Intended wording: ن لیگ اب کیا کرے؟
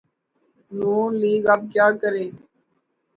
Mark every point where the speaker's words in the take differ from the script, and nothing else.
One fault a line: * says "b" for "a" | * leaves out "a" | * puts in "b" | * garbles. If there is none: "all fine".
all fine